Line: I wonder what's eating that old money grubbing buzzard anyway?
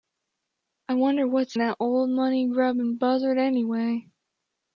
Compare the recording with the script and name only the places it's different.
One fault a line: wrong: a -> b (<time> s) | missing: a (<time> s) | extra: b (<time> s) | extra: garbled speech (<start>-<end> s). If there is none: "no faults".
missing: eating (1.6 s)